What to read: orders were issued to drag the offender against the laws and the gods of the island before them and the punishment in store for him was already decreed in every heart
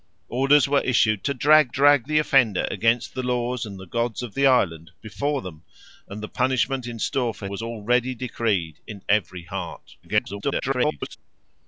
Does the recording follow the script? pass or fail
fail